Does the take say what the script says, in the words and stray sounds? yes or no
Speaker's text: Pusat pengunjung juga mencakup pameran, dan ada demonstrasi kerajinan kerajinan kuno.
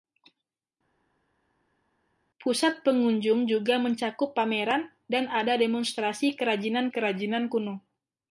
yes